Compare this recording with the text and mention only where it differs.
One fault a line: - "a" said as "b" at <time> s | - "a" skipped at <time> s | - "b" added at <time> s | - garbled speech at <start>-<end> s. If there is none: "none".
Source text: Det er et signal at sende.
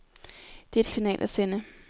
none